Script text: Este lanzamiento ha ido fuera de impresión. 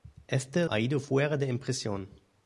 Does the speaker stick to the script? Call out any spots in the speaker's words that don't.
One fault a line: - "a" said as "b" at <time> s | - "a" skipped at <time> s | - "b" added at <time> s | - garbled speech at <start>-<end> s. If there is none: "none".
- "lanzamiento" skipped at 0.7 s